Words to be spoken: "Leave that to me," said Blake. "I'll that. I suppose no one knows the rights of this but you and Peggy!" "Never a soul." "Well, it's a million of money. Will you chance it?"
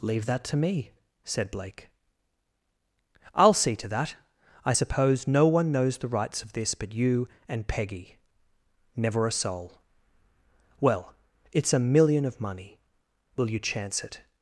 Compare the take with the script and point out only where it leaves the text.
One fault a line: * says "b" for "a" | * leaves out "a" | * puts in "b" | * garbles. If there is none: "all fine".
* puts in "see to"